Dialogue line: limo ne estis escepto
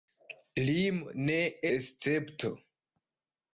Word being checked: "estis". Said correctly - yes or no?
no